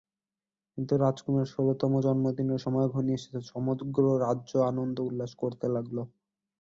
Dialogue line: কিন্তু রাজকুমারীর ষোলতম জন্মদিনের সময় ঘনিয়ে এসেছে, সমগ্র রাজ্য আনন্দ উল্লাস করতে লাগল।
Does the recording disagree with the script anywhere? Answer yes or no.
no